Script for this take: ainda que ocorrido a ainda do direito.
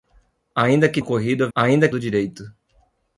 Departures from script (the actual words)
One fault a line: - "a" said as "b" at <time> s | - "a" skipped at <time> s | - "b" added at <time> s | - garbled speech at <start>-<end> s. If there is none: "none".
none